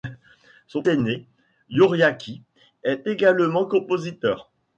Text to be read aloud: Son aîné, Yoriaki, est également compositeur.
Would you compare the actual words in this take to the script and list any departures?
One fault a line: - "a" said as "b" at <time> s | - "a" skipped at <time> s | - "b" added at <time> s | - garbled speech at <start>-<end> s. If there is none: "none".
none